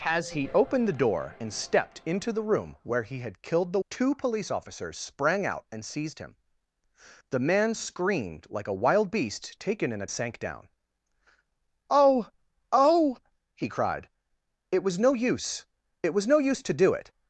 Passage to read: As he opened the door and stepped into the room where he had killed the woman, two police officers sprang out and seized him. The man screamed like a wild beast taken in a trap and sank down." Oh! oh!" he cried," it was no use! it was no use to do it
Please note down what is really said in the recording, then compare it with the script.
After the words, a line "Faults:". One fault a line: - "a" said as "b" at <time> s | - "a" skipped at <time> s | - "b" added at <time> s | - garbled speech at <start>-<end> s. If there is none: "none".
As he opened the door and stepped into the room where he had killed the two police officers sprang out and seized him. The man screamed like a wild beast taken in a sank down." Oh! oh!" he cried," it was no use! it was no use to do it
Faults:
- "woman" skipped at 3.8 s
- "trap and" skipped at 10.1 s